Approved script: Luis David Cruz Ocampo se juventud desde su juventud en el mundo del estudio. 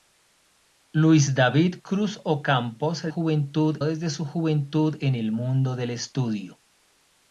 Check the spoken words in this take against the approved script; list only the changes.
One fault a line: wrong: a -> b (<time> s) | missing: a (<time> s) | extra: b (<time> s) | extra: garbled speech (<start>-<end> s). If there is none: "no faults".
no faults